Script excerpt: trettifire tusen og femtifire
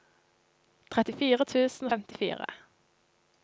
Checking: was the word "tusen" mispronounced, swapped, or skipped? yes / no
no